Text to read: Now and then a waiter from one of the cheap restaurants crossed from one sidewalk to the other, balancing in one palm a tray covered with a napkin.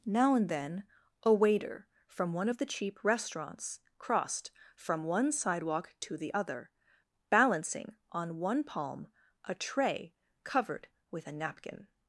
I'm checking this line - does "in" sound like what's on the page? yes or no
no